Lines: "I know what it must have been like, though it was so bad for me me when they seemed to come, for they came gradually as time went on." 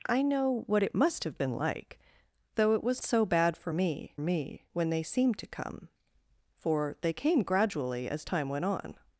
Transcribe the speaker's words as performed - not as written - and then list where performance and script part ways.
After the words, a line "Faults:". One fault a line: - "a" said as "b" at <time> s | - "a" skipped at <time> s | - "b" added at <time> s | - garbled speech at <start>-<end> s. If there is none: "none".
"I know what it must have been like, though it was so bad for me me when they seemed to come, for they came gradually as time went on."
Faults:
none